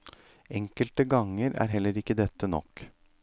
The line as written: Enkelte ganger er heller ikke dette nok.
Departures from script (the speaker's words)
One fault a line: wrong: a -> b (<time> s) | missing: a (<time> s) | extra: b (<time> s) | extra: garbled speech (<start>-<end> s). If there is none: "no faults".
no faults